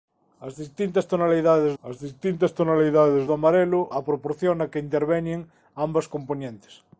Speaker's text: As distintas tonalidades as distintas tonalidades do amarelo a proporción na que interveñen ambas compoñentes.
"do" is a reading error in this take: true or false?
false